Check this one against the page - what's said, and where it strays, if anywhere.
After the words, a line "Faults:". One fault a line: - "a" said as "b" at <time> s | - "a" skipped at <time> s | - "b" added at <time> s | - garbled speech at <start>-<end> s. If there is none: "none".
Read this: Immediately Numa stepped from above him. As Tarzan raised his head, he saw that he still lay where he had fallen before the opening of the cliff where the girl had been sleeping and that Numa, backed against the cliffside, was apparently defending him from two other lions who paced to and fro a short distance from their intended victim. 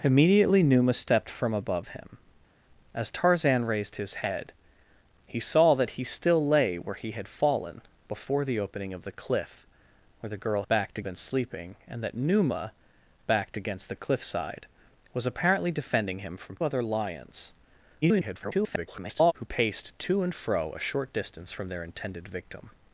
Immediately Numa stepped from above him. As Tarzan raised his head, he saw that he still lay where he had fallen before the opening of the cliff where the girl backed been sleeping and that Numa, backed against the cliffside, was apparently defending him from other lions [garbled] who paced to and fro a short distance from their intended victim.
Faults:
- "had" said as "backed" at 10.7 s
- "two" skipped at 16.6 s
- garbled speech at 18.0-19.3 s